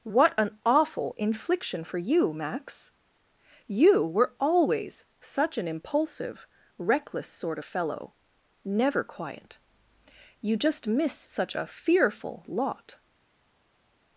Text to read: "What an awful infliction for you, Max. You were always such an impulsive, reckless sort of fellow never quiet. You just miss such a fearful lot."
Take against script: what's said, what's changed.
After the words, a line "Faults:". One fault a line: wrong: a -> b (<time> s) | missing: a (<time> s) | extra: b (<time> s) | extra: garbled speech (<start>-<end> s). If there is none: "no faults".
"What an awful infliction for you, Max. You were always such an impulsive, reckless sort of fellow never quiet. You just miss such a fearful lot."
Faults:
no faults